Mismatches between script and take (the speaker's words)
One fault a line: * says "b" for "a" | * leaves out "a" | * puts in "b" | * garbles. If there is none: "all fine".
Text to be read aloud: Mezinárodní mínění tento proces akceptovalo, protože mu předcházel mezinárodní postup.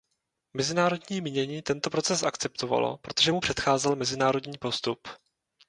all fine